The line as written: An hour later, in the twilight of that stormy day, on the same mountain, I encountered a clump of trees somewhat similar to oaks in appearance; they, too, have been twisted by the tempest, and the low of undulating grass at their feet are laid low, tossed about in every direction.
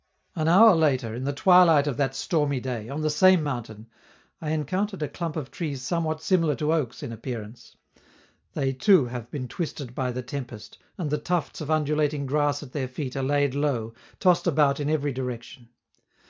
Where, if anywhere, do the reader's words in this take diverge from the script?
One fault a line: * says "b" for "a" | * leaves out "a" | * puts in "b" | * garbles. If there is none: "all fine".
* says "tufts" for "low"